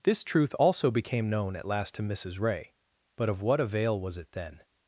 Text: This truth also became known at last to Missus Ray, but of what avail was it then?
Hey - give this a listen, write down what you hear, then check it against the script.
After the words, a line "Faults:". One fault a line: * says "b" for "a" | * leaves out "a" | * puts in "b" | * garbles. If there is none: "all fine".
This truth also became known at last to Missus Ray, but of what avail was it then?
Faults:
all fine